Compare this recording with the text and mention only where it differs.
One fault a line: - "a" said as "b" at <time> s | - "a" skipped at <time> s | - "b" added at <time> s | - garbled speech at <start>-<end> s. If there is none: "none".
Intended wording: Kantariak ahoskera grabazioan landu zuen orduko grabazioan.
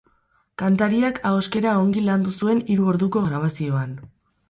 - "grabazioan" said as "ongi" at 1.8 s
- "hiru" added at 2.7 s